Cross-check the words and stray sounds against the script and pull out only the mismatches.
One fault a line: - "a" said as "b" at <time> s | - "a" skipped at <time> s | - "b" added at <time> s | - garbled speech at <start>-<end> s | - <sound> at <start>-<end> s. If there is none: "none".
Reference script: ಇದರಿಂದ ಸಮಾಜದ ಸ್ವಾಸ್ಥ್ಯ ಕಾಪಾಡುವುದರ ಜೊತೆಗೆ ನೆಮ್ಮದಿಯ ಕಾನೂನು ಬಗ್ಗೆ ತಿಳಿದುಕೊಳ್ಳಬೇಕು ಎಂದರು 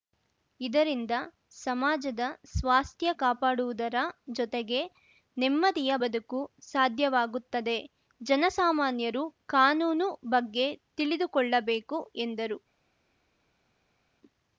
- "ಬದುಕು ಸಾಧ್ಯವಾಗುತ್ತದೆ ಜನಸಾಮಾನ್ಯರು" added at 5.9 s